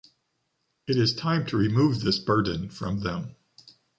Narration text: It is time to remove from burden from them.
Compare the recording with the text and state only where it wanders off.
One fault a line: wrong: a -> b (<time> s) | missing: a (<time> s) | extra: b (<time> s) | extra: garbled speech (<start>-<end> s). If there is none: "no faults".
wrong: from -> this (2.0 s)